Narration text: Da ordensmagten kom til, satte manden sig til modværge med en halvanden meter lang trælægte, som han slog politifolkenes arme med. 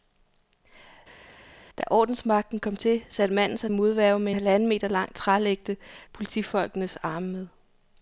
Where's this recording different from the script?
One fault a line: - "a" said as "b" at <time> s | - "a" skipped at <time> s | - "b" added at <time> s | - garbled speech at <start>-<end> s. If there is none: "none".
- "til" skipped at 3.7 s
- "en" skipped at 4.3 s
- "som han slog" skipped at 5.8 s